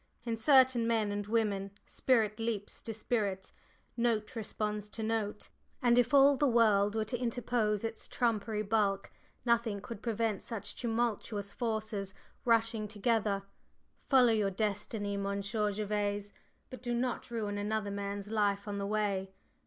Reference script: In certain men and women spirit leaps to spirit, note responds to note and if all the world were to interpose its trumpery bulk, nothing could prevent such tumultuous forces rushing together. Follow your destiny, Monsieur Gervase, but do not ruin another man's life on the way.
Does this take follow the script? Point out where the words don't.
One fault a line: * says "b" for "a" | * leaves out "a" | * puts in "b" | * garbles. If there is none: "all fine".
all fine